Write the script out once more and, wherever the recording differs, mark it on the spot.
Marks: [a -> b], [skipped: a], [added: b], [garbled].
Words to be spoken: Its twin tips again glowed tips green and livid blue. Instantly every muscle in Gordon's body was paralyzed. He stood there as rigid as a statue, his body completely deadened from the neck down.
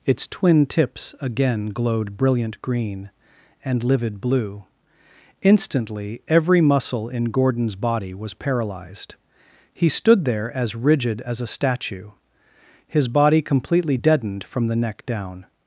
Its twin tips again glowed [tips -> brilliant] green and livid blue. Instantly every muscle in Gordon's body was paralyzed. He stood there as rigid as a statue, his body completely deadened from the neck down.